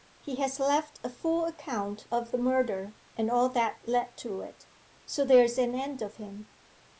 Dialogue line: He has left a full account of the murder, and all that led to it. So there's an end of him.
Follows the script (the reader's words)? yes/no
yes